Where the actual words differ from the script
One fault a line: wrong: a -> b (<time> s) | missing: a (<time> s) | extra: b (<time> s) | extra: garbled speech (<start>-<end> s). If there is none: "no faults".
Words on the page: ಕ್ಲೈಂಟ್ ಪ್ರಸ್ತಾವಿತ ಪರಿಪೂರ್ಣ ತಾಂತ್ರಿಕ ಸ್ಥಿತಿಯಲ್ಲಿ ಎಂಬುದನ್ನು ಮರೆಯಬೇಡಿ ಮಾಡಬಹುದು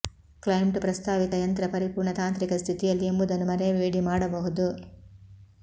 extra: ಯಂತ್ರ (1.3 s)